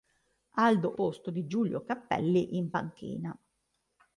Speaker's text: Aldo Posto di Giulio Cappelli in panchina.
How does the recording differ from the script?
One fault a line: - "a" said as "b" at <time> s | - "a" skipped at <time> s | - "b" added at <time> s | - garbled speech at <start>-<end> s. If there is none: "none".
none